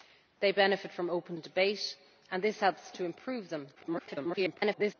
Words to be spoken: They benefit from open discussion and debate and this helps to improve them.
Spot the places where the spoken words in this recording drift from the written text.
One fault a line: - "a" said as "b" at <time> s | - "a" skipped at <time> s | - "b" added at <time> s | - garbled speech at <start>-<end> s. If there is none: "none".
- "discussion" skipped at 1.4 s
- garbled speech at 3.8-4.9 s